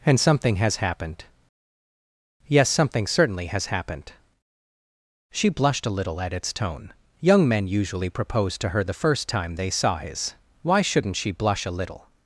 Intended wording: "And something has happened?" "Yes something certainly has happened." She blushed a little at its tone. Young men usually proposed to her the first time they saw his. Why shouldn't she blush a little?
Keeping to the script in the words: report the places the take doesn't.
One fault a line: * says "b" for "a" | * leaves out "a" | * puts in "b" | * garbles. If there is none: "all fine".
all fine